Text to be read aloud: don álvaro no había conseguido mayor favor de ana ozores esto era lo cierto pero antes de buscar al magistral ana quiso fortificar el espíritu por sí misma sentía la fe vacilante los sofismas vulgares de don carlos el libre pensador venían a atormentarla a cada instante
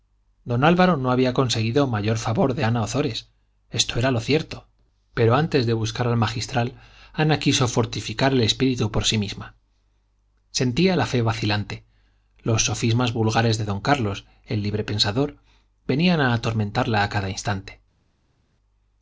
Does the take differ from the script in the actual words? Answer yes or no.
no